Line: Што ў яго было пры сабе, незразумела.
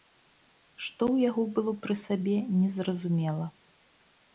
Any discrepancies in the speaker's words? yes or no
no